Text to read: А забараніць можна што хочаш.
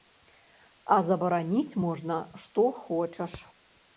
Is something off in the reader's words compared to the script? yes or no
no